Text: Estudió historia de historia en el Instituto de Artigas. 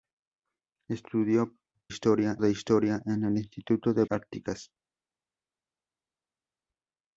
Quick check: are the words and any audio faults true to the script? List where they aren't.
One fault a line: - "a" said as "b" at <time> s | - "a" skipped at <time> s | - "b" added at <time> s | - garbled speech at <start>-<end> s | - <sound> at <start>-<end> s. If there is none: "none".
none